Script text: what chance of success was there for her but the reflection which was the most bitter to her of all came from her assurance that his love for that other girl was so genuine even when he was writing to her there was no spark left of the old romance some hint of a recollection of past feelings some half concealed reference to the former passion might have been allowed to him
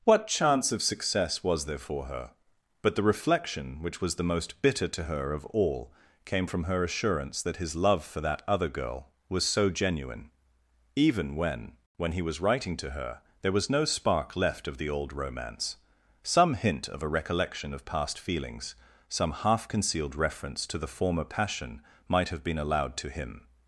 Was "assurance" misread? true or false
false